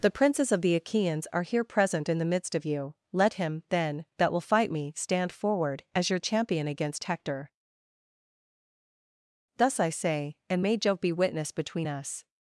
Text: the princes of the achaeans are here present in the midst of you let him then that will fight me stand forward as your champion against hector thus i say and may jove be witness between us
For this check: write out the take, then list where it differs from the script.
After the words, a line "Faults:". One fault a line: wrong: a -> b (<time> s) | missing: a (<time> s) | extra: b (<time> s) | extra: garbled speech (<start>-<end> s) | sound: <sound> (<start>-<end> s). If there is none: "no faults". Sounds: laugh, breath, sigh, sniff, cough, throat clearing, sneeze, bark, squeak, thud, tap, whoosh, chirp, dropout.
the princes of the achaeans are here present in the midst of you let him then that will fight me stand forward as your champion against hector thus i say and may jove be witness between us
Faults:
no faults